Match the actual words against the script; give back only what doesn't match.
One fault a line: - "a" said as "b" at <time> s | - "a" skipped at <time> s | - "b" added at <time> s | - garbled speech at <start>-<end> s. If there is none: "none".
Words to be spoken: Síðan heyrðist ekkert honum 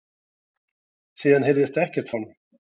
none